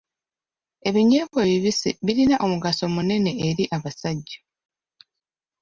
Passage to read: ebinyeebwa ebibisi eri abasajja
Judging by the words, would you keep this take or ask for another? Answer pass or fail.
fail